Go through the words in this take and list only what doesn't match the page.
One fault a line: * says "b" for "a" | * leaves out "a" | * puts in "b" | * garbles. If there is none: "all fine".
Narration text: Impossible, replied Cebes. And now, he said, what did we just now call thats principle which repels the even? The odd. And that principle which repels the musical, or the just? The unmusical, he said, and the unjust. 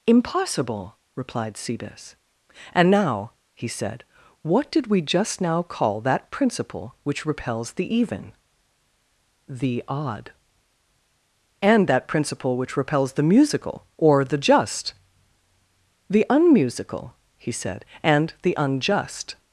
* says "that" for "thats"